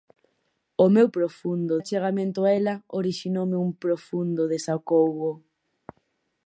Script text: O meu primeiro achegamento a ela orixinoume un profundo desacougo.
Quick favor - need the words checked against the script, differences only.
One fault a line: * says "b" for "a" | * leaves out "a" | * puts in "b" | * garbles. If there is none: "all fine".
* says "profundo" for "primeiro"